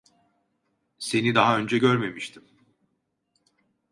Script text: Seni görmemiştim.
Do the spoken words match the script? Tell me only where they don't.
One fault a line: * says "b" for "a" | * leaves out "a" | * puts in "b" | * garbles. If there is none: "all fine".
* puts in "daha önce"